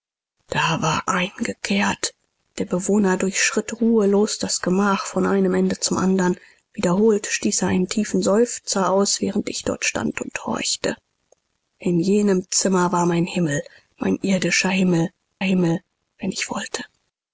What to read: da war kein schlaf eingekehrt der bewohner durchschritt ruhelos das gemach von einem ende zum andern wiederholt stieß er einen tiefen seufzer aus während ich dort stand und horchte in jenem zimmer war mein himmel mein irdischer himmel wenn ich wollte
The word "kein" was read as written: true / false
false